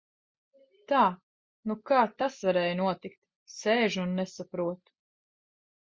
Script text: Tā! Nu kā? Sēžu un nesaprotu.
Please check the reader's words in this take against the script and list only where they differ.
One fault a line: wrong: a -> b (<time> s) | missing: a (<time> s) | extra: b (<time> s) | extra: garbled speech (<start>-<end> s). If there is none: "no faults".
extra: tas varēja notikt (2.2 s)